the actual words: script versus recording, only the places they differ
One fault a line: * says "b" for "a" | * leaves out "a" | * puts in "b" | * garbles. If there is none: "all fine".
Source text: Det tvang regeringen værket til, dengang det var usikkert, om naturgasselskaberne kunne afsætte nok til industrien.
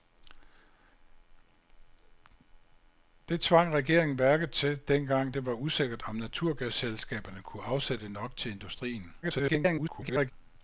* garbles